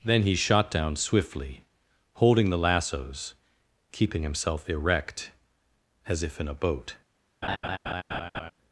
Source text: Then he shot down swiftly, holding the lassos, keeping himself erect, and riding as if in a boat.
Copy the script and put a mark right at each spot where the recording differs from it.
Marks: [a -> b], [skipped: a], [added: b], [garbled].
Then he shot down swiftly, holding the lassos, keeping himself erect, [skipped: and riding] as if in a boat.